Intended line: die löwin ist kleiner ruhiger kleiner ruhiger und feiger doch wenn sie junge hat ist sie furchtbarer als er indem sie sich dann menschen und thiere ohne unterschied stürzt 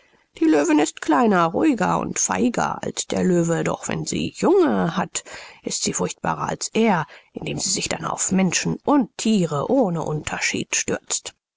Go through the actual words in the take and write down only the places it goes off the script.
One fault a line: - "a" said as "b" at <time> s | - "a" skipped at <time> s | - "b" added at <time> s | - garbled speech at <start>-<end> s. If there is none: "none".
- "kleiner ruhiger und feiger" said as "und feiger als der löwe" at 2.0 s
- "auf" added at 8.0 s